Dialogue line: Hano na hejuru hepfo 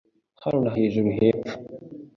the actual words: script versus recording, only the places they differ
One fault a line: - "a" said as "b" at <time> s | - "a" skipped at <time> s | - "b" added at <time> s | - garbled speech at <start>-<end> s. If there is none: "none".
none